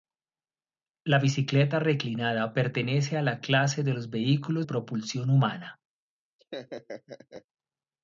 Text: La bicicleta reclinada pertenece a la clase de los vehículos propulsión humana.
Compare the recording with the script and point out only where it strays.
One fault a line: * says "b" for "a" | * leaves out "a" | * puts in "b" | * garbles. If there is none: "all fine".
all fine